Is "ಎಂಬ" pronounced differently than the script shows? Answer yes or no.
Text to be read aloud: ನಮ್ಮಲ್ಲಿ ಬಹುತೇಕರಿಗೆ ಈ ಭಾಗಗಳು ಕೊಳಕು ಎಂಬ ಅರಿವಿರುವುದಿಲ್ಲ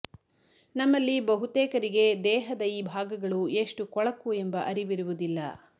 no